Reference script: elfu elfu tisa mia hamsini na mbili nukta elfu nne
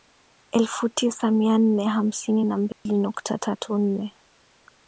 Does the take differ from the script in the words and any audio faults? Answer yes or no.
yes